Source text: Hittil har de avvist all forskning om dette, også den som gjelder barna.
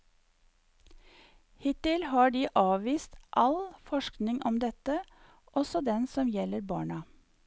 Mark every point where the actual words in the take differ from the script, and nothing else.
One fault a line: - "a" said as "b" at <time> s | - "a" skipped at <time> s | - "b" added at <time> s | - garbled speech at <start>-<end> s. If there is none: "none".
none